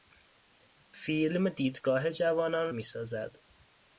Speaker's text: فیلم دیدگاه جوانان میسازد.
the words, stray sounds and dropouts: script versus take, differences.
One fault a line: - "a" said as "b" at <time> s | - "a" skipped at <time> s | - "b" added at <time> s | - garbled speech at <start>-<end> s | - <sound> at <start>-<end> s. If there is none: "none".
none